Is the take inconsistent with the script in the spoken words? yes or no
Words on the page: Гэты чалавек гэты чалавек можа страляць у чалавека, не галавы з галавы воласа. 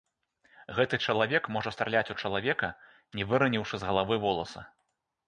yes